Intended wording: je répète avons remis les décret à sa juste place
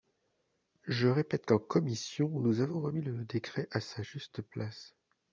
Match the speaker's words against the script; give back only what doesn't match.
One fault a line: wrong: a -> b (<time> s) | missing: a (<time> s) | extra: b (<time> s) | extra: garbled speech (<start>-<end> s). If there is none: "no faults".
extra: qu'en commission nous (1.4 s)
wrong: les -> le (3.0 s)